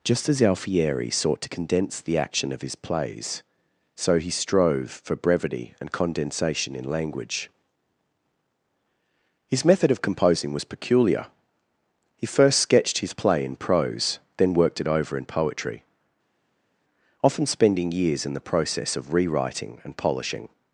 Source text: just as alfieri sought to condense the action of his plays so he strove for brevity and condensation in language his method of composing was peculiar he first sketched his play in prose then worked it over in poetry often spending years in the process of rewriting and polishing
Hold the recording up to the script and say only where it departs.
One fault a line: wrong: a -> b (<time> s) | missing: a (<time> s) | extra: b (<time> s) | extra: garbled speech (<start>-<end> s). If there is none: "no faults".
no faults